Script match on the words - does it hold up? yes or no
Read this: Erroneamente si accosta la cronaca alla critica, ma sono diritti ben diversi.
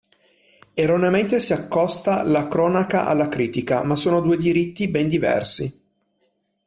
no